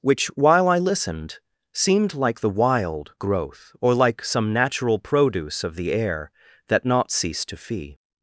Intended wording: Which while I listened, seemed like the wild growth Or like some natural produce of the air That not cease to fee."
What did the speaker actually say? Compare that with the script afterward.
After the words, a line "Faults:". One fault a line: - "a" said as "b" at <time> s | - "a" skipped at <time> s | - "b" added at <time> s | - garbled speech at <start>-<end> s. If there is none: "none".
Which while I listened, seemed like the wild growth Or like some natural produce of the air That not cease to fee."
Faults:
none